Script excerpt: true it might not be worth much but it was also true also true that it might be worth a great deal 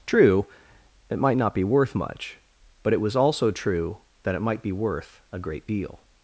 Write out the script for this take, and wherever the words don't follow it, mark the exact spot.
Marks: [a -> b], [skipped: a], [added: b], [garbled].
true it might not be worth much but it was also true [skipped: also true] that it might be worth a great deal